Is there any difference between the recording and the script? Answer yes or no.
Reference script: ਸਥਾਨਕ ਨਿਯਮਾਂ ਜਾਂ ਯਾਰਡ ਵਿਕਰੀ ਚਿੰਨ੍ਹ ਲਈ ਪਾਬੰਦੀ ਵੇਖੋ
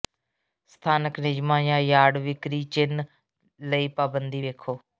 no